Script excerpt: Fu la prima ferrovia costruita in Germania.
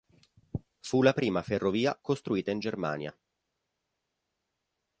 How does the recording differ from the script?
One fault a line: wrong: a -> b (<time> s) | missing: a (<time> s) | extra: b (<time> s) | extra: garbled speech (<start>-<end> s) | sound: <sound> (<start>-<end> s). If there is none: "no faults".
no faults